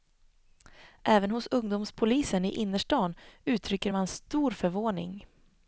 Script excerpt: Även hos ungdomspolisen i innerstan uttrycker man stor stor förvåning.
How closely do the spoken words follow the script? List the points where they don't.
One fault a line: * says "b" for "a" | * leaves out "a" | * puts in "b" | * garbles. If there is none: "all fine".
* leaves out "stor"